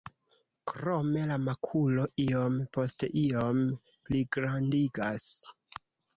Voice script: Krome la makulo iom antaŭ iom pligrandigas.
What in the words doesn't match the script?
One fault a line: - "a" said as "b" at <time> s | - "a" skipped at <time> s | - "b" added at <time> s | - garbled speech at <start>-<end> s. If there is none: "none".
- "antaŭ" said as "post" at 2.8 s